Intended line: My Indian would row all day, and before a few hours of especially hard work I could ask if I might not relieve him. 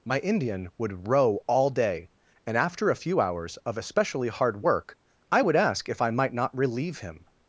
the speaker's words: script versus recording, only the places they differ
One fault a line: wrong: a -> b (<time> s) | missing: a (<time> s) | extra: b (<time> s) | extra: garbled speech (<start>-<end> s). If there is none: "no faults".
wrong: before -> after (2.6 s)
wrong: could -> would (5.4 s)